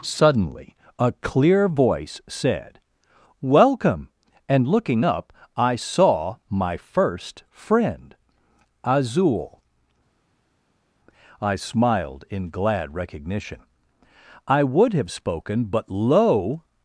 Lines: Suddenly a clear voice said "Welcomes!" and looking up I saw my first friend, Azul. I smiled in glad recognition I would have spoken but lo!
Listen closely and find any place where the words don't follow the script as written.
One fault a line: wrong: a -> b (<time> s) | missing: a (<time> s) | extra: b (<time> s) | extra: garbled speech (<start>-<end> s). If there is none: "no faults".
wrong: Welcomes -> Welcome (3.4 s)